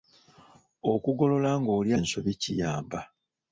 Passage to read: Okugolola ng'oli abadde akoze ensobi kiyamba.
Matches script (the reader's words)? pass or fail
fail